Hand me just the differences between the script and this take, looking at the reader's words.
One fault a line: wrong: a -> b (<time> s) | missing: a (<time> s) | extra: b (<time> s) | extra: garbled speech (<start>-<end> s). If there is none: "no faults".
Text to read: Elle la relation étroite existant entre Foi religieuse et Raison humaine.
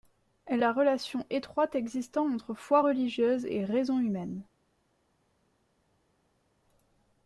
no faults